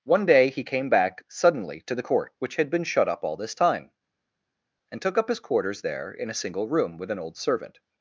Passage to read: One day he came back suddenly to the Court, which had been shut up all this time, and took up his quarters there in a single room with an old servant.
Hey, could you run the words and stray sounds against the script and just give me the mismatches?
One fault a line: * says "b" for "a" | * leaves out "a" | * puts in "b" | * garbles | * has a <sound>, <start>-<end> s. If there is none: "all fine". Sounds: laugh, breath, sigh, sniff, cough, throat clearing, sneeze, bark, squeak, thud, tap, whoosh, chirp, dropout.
all fine